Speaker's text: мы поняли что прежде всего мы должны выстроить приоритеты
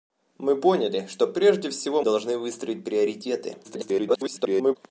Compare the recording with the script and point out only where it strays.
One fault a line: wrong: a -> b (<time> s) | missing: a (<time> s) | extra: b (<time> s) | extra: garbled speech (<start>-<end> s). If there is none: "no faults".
missing: мы (2.0 s)
extra: garbled speech (3.6-4.8 s)